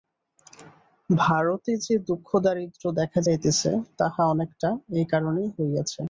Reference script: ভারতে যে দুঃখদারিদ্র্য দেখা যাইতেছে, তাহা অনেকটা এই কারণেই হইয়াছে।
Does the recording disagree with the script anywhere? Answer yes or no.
no